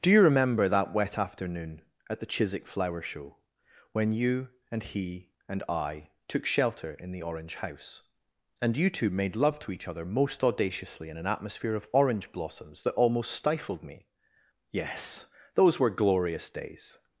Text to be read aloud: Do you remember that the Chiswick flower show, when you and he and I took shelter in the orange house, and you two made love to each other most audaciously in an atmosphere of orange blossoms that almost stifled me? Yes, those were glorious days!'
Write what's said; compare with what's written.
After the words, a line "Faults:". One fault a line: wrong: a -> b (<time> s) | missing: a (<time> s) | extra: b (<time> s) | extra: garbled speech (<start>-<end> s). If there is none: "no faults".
Do you remember that wet afternoon at the Chiswick flower show, when you and he and I took shelter in the orange house, and you two made love to each other most audaciously in an atmosphere of orange blossoms that almost stifled me? Yes, those were glorious days!'
Faults:
extra: wet afternoon at (0.9 s)